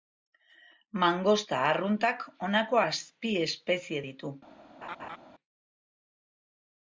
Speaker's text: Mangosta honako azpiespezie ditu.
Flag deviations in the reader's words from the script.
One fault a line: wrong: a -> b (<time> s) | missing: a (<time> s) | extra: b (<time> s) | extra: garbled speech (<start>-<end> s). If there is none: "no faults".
extra: arruntak (1.7 s)